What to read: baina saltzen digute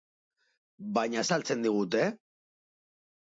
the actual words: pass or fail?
pass